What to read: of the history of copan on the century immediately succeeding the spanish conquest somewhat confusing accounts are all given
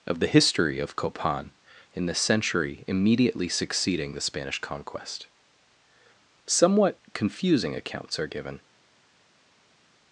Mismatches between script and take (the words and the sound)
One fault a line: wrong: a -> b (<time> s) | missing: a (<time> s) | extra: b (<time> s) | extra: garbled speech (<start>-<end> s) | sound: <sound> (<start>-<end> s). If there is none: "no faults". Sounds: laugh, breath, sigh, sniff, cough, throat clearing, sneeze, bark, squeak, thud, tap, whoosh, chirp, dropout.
wrong: on -> in (1.9 s)
missing: all (8.3 s)